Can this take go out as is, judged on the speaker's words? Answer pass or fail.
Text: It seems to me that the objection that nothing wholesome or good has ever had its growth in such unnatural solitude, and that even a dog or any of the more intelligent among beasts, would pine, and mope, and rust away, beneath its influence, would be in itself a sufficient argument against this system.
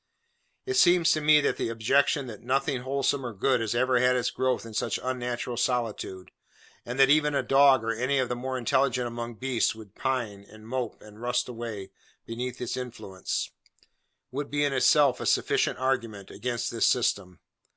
pass